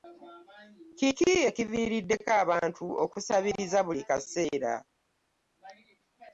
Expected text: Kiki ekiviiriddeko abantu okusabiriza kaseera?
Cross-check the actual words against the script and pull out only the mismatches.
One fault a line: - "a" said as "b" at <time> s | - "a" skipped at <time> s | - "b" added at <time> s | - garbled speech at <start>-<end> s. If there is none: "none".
- "buli" added at 3.9 s